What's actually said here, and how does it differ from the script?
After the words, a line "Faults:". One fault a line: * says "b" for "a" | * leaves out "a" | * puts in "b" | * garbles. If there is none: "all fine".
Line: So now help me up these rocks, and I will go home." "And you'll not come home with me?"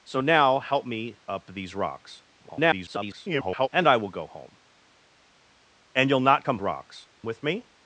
So now help me up these rocks, [garbled] and I will go home." "And you'll not come rocks with me?"
Faults:
* garbles
* says "rocks" for "home"